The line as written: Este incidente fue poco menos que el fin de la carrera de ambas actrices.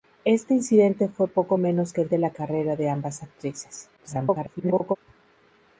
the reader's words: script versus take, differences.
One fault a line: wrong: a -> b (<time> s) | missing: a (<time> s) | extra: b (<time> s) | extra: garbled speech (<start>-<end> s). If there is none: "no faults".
missing: fin (2.1 s)
extra: garbled speech (4.0-5.0 s)